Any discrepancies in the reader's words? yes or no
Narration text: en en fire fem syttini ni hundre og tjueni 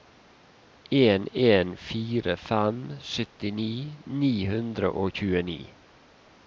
no